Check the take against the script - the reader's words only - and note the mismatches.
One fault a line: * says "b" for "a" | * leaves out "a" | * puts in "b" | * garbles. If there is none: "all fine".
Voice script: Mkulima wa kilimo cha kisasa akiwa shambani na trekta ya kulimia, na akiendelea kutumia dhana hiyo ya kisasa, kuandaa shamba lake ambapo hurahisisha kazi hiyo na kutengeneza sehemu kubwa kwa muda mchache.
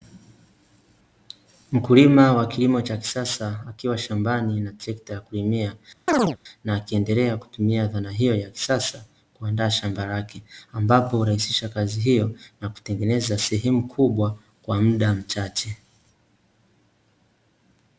all fine